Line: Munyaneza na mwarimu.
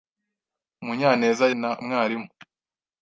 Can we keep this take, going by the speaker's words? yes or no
yes